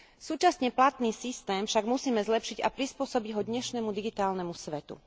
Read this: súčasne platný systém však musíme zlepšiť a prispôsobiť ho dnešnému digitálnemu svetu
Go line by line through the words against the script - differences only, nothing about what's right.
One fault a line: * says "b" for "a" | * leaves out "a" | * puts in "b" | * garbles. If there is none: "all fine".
all fine